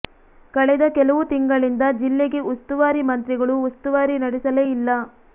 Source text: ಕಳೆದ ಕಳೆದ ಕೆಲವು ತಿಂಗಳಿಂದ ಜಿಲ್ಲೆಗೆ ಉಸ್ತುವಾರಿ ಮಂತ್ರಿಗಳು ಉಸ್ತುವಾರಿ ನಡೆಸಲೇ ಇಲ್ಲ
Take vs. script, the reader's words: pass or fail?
fail